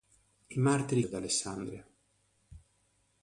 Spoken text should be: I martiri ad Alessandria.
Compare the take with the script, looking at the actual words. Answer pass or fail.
pass